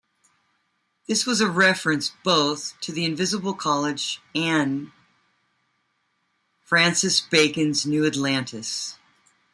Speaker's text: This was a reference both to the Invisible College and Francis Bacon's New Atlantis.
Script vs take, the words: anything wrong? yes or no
no